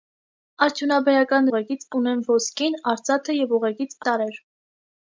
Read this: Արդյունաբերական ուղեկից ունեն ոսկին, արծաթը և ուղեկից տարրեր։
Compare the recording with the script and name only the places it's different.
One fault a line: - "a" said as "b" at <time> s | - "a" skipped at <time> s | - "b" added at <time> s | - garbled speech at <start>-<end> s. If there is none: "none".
none